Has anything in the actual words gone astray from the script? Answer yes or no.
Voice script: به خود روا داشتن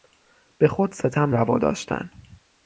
yes